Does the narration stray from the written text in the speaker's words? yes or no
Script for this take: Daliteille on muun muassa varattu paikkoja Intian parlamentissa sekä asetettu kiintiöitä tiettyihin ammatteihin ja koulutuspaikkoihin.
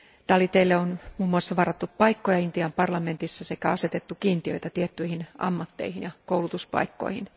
no